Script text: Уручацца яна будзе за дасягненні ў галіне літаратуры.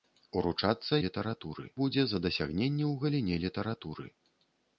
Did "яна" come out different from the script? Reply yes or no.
yes